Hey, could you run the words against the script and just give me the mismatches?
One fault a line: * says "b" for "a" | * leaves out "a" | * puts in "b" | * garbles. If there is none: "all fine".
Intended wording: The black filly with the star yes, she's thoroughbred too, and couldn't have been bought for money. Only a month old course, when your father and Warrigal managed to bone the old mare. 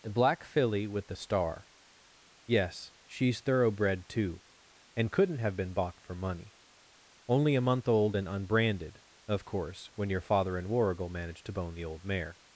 * puts in "and unbranded of"